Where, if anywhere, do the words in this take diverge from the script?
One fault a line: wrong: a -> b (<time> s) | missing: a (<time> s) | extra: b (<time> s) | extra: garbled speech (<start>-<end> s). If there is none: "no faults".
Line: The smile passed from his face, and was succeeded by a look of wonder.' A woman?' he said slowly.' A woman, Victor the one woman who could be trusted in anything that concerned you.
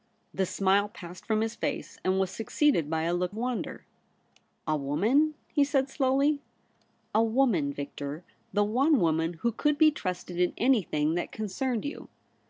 missing: of (3.4 s)